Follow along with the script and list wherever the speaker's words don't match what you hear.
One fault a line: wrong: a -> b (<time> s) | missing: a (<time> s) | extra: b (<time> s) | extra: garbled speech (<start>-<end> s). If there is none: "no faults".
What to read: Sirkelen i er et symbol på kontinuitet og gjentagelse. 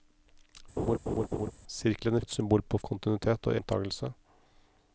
no faults